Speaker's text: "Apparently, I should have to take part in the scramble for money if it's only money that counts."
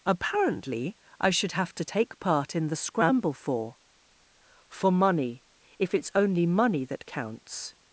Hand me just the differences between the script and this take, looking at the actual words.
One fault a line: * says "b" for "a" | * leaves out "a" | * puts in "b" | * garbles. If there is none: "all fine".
* puts in "for"